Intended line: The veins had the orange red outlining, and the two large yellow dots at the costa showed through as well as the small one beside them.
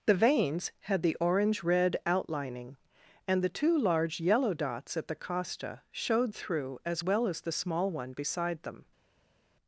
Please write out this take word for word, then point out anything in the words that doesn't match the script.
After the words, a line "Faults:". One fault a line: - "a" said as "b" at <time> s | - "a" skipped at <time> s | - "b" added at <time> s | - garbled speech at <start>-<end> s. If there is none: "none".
The veins had the orange red outlining, and the two large yellow dots at the costa showed through as well as the small one beside them.
Faults:
none